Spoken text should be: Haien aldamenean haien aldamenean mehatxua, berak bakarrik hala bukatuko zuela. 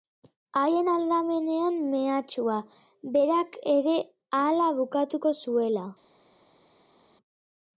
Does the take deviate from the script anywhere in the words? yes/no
yes